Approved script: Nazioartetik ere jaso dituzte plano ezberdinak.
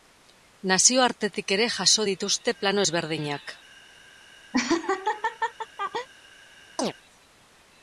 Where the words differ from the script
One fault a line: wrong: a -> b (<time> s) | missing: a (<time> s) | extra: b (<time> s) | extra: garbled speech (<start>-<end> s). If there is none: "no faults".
no faults